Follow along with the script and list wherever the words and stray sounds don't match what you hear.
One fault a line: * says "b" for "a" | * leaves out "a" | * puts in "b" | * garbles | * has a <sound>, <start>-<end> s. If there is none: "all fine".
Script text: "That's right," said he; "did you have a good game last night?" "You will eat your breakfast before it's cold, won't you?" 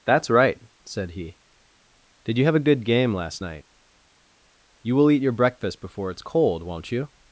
all fine